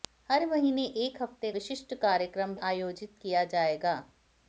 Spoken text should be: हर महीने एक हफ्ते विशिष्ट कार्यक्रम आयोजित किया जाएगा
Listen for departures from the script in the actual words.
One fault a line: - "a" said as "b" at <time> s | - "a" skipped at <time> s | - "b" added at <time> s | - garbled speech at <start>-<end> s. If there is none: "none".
none